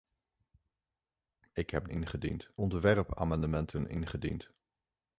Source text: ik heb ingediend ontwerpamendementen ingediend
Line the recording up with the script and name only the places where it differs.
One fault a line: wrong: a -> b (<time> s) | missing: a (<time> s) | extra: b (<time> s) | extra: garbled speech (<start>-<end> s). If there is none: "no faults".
no faults